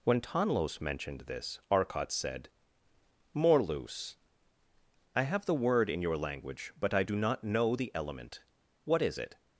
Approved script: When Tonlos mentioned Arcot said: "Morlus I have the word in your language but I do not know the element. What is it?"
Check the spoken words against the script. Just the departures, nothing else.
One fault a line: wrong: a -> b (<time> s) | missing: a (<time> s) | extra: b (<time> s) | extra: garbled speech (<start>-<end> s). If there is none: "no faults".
extra: this (1.2 s)